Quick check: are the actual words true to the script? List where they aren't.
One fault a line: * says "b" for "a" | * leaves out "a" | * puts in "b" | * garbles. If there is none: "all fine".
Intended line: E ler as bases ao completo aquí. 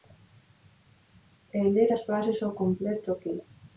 all fine